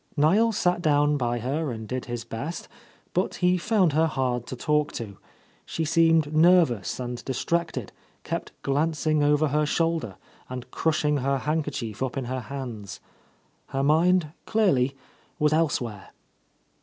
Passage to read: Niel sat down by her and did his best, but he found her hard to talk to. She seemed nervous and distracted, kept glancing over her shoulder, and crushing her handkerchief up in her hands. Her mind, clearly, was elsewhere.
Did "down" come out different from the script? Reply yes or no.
no